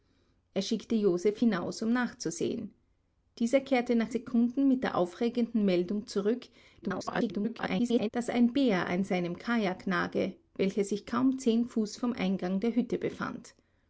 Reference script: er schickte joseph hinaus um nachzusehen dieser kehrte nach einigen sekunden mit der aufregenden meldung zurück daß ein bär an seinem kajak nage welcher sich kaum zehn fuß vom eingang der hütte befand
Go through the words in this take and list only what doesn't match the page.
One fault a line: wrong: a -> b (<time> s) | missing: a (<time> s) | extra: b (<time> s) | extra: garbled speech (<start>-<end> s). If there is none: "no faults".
missing: einigen (4.1 s)
extra: garbled speech (6.8-8.1 s)